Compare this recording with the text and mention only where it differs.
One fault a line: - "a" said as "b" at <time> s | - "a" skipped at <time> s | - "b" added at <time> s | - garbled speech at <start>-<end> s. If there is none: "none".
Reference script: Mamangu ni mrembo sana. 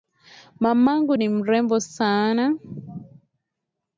none